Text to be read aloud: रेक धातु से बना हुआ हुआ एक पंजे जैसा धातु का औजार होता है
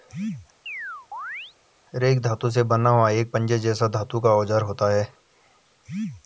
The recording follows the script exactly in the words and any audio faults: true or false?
false